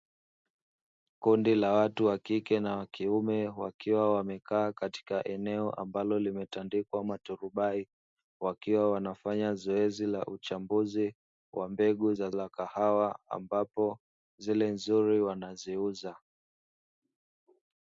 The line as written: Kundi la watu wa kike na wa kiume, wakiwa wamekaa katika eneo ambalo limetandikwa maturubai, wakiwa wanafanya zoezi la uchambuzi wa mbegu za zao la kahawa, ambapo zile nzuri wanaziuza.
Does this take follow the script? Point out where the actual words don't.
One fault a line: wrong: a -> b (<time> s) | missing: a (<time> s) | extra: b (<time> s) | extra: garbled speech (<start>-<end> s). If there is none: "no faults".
missing: zao (12.3 s)